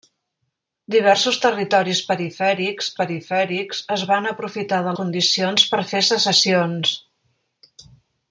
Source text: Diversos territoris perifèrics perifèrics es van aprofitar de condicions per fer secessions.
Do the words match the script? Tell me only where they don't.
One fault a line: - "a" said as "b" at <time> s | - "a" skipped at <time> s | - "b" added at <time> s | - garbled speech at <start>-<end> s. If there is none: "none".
none